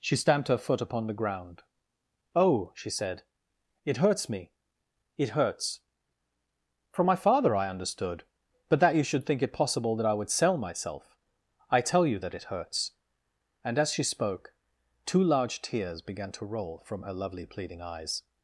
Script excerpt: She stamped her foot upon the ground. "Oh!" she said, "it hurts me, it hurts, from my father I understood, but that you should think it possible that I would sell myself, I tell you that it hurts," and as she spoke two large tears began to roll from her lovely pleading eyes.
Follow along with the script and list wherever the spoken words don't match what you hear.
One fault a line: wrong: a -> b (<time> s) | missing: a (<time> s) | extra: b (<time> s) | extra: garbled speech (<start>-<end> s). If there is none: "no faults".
no faults